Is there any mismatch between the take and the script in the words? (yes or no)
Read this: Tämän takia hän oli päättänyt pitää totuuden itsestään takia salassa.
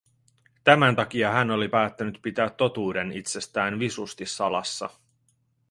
yes